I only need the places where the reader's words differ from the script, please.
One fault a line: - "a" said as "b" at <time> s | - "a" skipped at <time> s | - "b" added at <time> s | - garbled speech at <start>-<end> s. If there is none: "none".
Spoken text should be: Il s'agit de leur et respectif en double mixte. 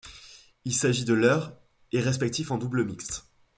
none